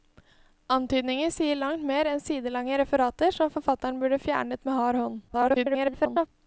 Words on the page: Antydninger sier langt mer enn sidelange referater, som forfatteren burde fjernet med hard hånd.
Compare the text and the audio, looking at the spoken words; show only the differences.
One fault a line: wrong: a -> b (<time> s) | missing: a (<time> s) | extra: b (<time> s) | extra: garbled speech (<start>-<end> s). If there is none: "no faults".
extra: garbled speech (5.3-6.3 s)